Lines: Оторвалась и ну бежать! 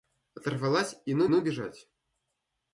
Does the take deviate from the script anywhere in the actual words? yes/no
yes